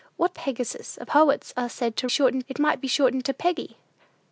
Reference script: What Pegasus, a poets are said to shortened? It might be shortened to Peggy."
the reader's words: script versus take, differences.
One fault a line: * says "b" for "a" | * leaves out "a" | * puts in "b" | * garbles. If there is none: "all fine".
all fine